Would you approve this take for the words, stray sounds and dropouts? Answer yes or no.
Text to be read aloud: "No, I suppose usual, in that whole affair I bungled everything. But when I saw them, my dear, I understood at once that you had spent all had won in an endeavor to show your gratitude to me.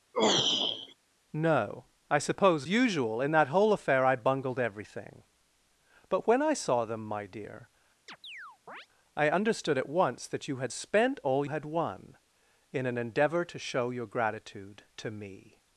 no